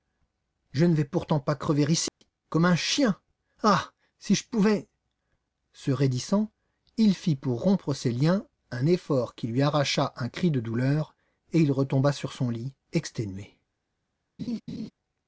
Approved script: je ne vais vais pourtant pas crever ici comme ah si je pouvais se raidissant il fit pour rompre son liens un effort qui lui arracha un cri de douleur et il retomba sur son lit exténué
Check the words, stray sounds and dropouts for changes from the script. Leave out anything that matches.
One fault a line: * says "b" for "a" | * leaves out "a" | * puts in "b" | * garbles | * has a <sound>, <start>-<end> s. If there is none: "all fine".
* leaves out "vais"
* has a dropout, 2.1-2.2 s
* puts in "un chien"
* says "ses" for "son"
* has a laugh, 14.4-14.9 s